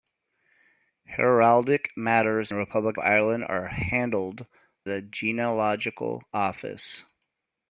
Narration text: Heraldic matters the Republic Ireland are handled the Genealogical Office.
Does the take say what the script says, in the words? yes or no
yes